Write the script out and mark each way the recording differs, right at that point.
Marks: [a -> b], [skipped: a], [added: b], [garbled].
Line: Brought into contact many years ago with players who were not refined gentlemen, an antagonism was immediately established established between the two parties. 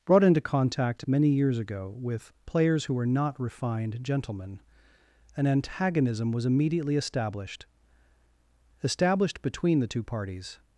Brought into contact many years ago with players who were not refined gentlemen, an antagonism was immediately established established between the two parties.